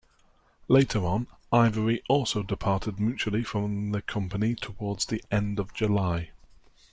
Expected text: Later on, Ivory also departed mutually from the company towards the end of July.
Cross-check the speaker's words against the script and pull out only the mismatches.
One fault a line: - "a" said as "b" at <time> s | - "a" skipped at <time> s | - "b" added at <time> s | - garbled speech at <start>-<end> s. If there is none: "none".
none